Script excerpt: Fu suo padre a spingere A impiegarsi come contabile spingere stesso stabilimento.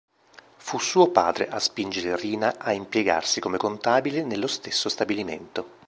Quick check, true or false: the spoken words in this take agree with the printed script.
false